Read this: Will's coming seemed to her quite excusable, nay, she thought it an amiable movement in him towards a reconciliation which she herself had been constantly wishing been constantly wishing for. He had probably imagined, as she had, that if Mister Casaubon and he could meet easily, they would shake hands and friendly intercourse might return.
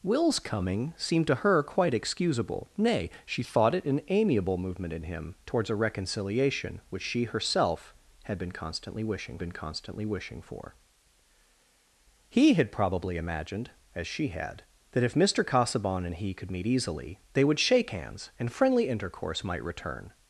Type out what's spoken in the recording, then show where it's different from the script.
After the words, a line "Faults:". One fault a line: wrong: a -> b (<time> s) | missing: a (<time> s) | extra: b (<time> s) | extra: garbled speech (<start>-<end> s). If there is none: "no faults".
Will's coming seemed to her quite excusable, nay, she thought it an amiable movement in him towards a reconciliation which she herself had been constantly wishing been constantly wishing for. He had probably imagined, as she had, that if Mister Casaubon and he could meet easily, they would shake hands and friendly intercourse might return.
Faults:
no faults